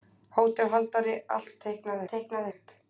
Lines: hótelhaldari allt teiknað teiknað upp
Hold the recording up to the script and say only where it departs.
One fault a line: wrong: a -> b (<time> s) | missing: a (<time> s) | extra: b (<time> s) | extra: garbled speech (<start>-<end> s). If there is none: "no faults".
no faults